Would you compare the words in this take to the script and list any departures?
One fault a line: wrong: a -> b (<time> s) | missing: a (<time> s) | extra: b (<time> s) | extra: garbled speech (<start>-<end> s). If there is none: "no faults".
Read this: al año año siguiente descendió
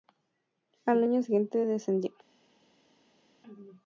missing: año (1.2 s)